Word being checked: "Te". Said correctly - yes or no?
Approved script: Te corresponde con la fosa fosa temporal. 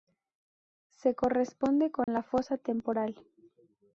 no